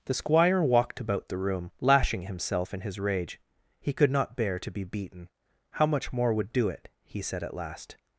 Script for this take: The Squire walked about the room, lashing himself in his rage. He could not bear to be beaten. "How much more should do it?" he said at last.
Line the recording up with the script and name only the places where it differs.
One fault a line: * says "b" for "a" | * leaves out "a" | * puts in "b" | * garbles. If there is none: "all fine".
* says "would" for "should"